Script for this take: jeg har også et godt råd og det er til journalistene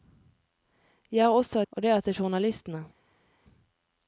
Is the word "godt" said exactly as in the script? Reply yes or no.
no